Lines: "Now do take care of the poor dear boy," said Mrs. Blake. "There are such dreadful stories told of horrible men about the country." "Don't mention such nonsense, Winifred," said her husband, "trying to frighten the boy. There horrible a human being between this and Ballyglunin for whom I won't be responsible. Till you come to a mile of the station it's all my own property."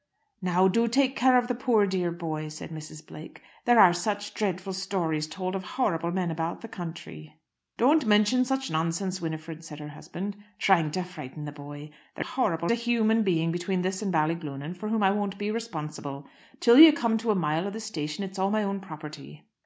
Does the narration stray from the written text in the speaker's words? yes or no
no